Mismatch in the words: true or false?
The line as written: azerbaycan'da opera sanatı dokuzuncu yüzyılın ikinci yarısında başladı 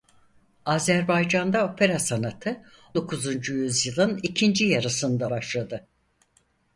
false